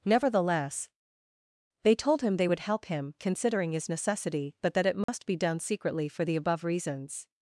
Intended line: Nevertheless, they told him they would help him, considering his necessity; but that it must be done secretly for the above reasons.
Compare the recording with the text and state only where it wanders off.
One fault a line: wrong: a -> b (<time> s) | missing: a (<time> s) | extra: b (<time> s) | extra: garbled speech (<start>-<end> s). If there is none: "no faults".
no faults